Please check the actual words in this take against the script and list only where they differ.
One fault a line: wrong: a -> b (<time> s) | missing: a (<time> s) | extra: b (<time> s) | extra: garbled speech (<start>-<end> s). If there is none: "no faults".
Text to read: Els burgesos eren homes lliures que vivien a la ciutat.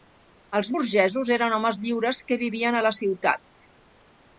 no faults